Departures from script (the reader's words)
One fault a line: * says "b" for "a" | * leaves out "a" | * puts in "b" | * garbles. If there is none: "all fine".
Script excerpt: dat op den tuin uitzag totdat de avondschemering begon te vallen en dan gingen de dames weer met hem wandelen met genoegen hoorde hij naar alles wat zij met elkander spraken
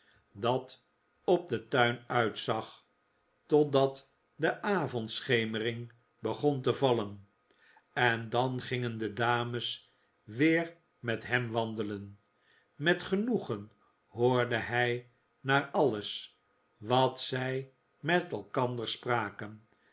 all fine